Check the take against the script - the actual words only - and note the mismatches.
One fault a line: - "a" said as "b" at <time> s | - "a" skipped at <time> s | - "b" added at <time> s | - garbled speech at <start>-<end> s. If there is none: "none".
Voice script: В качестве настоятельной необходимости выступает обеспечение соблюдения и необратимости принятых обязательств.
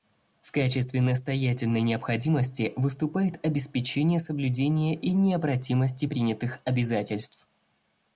none